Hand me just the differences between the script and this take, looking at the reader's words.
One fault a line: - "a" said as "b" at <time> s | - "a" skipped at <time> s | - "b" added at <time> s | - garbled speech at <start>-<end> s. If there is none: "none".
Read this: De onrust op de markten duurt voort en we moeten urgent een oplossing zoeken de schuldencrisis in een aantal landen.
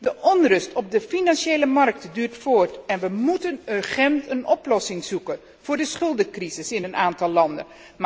- "financiële" added at 1.0 s
- "voor" added at 5.6 s